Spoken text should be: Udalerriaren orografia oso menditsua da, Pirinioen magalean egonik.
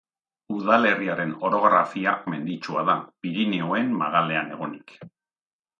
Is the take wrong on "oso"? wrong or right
wrong